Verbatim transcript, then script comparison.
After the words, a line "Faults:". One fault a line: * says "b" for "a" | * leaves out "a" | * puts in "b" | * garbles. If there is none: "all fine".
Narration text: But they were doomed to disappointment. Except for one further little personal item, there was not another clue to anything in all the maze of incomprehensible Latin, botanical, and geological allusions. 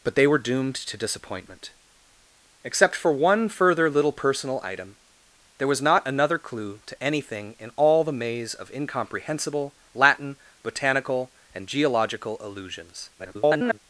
But they were doomed to disappointment. Except for one further little personal item, there was not another clue to anything in all the maze of incomprehensible Latin, botanical, and geological allusions. [garbled]
Faults:
* garbles